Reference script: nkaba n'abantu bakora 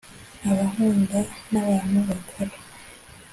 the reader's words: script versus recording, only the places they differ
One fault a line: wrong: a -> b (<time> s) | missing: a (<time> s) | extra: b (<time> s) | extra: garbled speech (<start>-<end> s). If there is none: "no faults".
extra: nkunda (0.7 s)